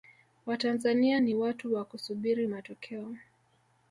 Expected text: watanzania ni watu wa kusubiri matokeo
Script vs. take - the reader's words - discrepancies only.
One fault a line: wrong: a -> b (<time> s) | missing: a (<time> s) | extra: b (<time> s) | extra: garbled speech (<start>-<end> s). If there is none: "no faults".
no faults